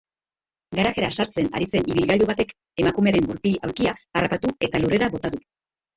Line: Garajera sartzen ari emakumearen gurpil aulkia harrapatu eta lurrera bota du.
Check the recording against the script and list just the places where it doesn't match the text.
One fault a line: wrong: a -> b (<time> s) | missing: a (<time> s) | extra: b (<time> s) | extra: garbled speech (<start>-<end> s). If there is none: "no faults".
extra: zen ibilgailu batek (1.7 s)